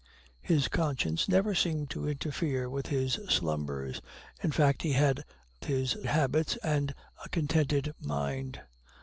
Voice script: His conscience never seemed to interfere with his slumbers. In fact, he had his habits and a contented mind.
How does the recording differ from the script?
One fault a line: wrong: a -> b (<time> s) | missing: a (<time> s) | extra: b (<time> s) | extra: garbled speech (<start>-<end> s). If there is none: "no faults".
no faults